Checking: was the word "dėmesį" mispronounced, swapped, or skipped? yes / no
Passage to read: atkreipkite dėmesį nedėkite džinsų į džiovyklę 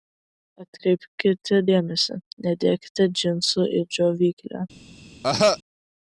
no